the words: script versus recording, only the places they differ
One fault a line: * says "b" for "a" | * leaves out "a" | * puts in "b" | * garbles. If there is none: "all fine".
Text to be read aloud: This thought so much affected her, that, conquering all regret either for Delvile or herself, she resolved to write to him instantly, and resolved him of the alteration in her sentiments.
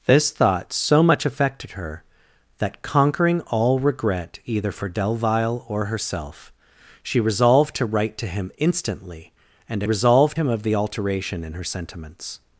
all fine